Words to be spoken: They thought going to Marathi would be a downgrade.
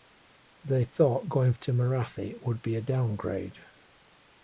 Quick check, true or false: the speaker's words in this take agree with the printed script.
true